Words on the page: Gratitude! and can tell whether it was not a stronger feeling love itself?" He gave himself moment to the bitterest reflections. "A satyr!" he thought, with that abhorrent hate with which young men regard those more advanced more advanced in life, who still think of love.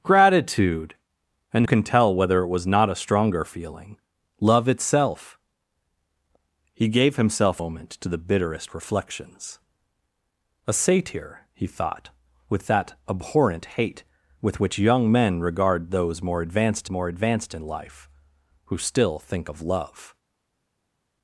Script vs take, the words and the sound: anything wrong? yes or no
no